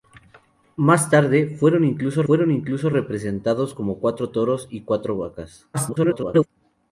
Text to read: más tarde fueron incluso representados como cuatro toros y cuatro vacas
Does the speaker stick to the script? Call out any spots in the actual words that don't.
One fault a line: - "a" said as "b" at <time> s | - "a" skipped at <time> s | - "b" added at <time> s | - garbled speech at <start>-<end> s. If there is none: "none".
- "fueron incluso" added at 2.2 s
- garbled speech at 5.7-6.5 s